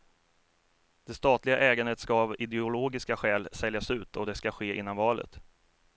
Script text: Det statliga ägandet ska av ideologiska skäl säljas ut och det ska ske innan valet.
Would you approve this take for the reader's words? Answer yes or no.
yes